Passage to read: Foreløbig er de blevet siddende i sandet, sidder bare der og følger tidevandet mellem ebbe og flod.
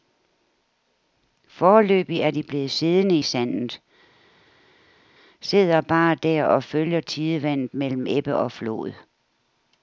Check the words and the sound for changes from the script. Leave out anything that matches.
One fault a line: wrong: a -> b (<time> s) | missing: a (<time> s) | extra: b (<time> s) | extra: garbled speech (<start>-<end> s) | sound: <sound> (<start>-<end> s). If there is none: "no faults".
no faults